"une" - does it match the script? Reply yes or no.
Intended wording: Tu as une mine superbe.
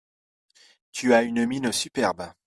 yes